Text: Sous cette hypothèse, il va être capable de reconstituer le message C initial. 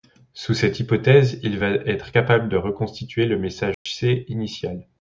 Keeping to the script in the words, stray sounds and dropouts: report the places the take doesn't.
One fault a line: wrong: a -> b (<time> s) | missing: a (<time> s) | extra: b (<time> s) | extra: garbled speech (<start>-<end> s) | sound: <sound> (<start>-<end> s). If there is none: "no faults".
sound: dropout (3.7-3.9 s)